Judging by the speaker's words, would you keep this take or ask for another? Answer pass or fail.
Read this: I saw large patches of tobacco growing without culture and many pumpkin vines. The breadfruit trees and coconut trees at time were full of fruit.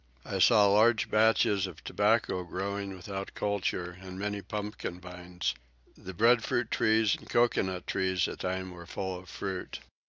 pass